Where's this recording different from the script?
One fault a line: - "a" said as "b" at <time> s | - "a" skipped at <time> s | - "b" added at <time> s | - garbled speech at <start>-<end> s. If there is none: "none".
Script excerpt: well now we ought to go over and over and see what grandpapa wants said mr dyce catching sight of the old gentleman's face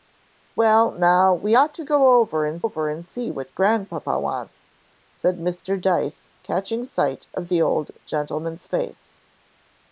none